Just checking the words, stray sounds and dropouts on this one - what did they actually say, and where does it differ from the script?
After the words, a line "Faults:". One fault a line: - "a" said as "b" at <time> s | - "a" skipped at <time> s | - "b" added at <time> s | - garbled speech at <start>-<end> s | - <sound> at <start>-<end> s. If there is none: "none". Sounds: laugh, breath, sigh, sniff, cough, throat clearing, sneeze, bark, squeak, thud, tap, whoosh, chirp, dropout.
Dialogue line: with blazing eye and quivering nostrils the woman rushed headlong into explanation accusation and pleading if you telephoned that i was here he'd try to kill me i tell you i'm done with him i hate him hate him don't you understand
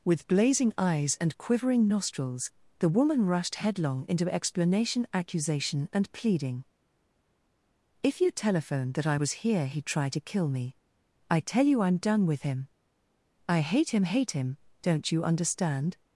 with blazing eyes and quivering nostrils the woman rushed headlong into explanation accusation and pleading if you telephoned that i was here he'd try to kill me i tell you i'm done with him i hate him hate him don't you understand
Faults:
- "eye" said as "eyes" at 0.8 s